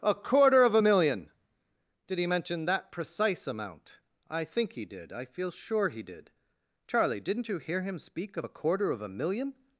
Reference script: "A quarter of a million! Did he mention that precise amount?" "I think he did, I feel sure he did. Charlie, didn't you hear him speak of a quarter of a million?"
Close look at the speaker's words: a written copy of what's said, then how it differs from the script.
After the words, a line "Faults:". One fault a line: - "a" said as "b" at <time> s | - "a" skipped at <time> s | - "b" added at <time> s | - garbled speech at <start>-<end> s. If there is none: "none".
"A quarter of a million! Did he mention that precise amount?" "I think he did, I feel sure he did. Charlie, didn't you hear him speak of a quarter of a million?"
Faults:
none